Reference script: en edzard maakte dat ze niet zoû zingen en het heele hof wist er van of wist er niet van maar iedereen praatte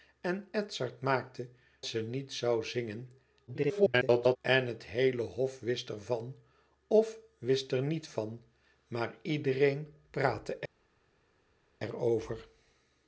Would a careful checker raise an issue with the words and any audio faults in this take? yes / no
yes